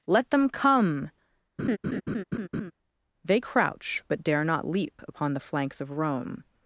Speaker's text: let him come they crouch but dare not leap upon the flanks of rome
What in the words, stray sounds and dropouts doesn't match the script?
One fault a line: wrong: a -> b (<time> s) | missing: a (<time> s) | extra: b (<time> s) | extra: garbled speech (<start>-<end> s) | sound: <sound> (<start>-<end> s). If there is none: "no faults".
wrong: him -> them (0.3 s)
sound: laugh (1.6-2.7 s)